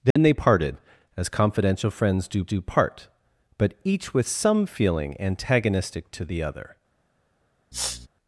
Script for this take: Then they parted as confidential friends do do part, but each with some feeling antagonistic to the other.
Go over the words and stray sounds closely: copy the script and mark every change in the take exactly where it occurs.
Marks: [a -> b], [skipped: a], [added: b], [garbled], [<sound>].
Then [dropout] they parted as confidential friends do do part, but each with some feeling antagonistic to the other. [sniff]